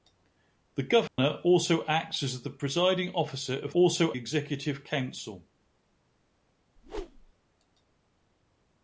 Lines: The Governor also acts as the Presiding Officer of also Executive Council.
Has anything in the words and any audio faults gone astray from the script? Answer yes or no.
yes